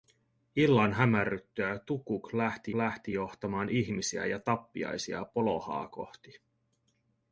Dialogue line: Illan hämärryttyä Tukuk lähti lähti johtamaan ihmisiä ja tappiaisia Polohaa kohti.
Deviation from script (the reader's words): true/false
false